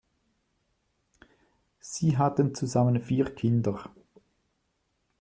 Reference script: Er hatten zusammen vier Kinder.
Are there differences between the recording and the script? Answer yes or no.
yes